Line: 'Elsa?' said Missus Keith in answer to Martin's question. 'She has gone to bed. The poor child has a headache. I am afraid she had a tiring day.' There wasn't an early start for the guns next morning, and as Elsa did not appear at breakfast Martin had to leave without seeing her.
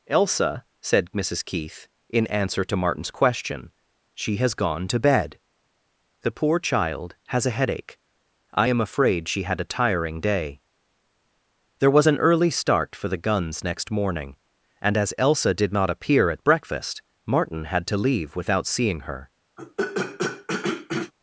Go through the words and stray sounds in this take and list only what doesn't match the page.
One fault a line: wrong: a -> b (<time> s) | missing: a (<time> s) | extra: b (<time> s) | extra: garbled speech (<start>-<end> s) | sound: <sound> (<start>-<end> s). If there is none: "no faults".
wrong: wasn't -> was (11.9 s)
sound: throat clearing (19.6-21.1 s)